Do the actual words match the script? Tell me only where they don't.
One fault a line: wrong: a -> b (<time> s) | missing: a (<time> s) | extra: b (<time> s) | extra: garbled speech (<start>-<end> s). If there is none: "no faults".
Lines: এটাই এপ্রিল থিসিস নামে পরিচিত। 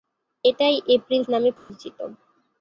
missing: থিসিস (1.2 s)